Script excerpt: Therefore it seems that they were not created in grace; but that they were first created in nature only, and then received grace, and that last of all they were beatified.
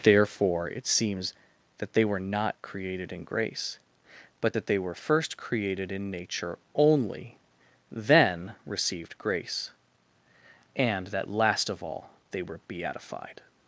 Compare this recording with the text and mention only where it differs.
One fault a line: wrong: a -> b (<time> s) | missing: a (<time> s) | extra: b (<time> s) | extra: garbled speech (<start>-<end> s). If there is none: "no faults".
missing: and (7.4 s)